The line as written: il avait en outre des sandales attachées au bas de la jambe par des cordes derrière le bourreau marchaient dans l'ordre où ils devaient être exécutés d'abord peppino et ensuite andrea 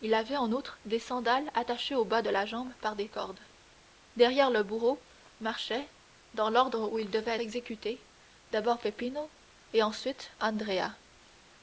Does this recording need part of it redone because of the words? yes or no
yes